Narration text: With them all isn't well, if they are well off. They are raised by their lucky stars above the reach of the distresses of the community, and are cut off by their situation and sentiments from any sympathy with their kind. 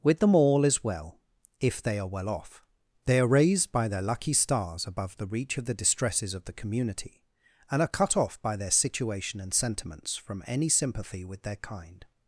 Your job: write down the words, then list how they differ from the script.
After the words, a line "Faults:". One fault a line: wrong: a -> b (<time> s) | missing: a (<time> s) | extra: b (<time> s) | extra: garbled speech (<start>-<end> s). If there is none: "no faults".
With them all is well, if they are well off. They are raised by their lucky stars above the reach of the distresses of the community, and are cut off by their situation and sentiments from any sympathy with their kind.
Faults:
wrong: isn't -> is (0.6 s)